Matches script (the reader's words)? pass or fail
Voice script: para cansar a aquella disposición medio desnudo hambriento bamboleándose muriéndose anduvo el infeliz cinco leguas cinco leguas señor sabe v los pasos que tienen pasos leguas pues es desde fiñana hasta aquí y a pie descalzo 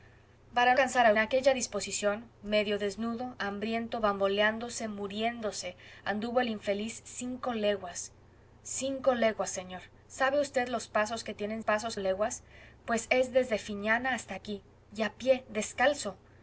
pass